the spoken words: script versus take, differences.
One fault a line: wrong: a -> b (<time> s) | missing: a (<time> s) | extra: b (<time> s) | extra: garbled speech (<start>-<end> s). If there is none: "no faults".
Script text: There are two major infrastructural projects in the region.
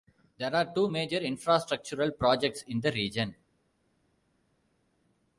no faults